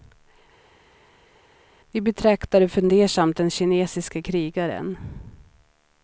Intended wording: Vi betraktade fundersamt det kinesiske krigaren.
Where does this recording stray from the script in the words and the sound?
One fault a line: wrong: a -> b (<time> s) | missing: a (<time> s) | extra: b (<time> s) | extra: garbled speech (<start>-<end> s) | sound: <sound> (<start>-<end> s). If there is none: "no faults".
wrong: det -> den (3.4 s)